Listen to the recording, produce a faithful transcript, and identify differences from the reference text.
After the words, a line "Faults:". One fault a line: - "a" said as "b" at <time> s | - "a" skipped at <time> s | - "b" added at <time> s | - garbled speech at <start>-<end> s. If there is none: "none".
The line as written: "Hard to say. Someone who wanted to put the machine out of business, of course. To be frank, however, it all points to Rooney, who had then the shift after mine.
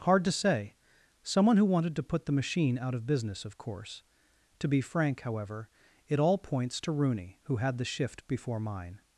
"Hard to say. Someone who wanted to put the machine out of business, of course. To be frank, however, it all points to Rooney, who had the shift before mine.
Faults:
- "then" skipped at 7.8 s
- "after" said as "before" at 8.3 s